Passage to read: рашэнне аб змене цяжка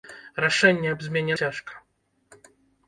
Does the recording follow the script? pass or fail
pass